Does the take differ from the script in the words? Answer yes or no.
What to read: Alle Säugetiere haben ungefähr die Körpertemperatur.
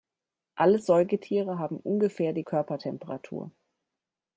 no